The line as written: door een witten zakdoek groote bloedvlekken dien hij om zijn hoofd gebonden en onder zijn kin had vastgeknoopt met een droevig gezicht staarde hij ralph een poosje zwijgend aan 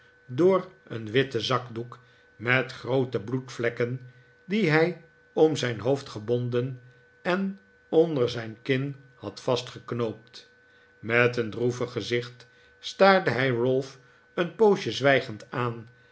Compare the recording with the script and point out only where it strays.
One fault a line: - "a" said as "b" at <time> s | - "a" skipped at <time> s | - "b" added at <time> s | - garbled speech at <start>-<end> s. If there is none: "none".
- "met" added at 2.4 s